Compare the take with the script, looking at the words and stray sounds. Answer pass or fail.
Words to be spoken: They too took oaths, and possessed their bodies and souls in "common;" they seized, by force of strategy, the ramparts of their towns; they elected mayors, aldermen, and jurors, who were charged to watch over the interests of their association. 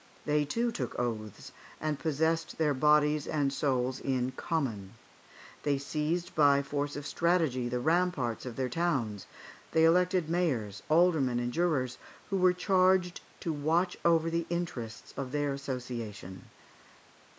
pass